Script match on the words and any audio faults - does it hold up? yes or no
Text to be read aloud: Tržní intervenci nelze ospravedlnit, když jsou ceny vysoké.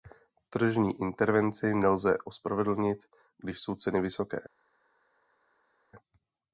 yes